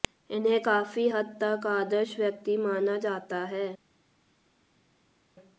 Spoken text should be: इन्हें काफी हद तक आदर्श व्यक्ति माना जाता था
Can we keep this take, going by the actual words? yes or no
no